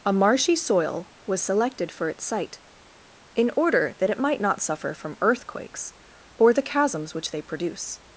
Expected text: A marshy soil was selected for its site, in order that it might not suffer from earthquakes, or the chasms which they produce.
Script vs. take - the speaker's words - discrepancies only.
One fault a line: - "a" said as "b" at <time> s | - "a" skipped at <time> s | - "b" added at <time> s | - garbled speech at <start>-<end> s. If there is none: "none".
none